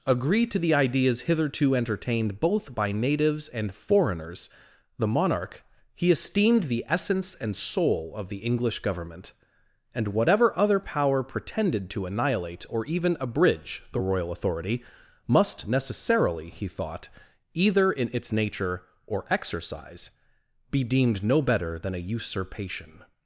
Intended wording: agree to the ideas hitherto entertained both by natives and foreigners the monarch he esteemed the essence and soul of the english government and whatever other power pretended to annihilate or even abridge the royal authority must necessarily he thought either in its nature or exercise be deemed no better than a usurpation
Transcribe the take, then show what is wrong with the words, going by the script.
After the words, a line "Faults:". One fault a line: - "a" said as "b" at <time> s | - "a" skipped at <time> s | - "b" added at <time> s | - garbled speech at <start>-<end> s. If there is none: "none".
agree to the ideas hitherto entertained both by natives and foreigners the monarch he esteemed the essence and soul of the english government and whatever other power pretended to annihilate or even abridge the royal authority must necessarily he thought either in its nature or exercise be deemed no better than a usurpation
Faults:
none